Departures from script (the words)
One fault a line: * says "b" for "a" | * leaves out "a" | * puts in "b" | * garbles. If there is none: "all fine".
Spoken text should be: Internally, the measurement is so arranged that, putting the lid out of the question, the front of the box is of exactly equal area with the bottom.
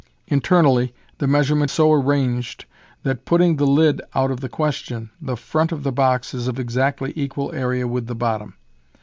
* leaves out "is"